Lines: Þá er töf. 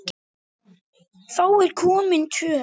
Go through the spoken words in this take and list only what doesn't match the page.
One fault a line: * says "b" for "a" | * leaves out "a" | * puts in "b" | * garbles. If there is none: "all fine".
* puts in "komin"